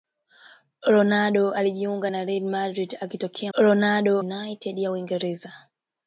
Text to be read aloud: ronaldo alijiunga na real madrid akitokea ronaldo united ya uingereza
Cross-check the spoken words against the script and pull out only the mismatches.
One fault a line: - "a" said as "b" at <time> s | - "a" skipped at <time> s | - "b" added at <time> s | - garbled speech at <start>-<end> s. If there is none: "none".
none